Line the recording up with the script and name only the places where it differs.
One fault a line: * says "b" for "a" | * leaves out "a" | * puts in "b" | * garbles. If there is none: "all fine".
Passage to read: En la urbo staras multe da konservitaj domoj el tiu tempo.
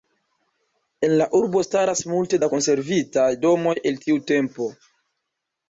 all fine